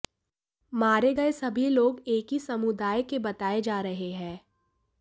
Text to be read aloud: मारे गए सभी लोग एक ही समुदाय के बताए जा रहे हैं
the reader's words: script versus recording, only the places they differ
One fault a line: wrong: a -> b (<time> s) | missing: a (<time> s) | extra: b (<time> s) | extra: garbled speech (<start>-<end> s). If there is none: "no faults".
no faults